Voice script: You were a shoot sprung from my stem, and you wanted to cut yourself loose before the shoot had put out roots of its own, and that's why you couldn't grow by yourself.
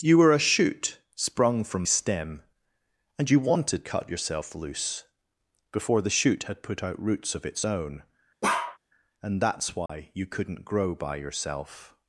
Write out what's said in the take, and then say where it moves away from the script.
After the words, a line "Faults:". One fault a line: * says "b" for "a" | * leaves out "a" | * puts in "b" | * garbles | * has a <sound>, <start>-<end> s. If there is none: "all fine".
You were a shoot sprung from stem, and you wanted cut yourself loose before the shoot had put out roots of its own, and that's why you couldn't grow by yourself.
Faults:
* leaves out "my"
* leaves out "to"
* has a bark, 8.4-8.8 s
* has a dropout, 9.9-9.9 s